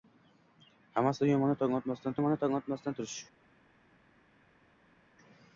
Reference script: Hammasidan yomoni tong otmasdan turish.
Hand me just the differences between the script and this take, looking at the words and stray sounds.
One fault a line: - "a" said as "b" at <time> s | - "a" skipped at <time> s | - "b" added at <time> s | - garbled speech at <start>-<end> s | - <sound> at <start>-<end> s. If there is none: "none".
- "yomoni tong otmasdan" added at 2.2 s